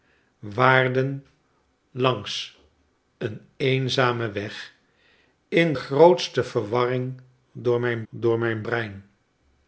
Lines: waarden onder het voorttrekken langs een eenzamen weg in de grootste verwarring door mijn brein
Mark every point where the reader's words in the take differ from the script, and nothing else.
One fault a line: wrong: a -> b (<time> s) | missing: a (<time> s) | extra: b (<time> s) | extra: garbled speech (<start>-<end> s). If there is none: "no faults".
missing: onder het voorttrekken (1.2 s)
missing: de (5.7 s)
extra: door mijn (8.1 s)